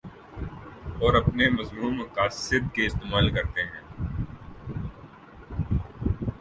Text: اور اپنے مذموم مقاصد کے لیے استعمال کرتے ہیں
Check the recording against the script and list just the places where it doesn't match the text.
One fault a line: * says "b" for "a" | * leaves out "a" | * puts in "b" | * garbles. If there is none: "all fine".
* leaves out "لیے"